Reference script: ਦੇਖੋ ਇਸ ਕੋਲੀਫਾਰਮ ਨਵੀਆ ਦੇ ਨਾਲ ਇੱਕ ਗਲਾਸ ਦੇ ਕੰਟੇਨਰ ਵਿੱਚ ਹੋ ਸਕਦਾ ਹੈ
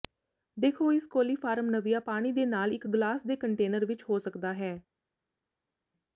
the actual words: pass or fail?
fail